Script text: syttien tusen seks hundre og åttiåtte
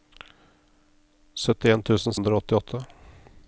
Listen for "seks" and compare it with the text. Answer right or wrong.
wrong